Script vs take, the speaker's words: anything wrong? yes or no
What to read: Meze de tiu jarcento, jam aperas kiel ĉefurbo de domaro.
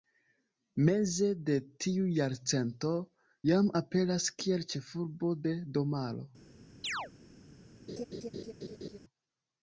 no